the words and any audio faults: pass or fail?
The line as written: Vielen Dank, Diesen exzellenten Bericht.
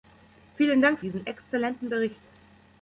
pass